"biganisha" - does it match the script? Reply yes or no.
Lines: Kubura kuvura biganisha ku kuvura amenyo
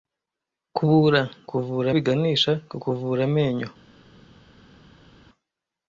yes